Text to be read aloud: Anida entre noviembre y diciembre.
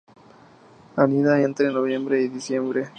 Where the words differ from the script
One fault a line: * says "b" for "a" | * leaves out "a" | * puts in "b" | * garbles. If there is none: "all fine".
all fine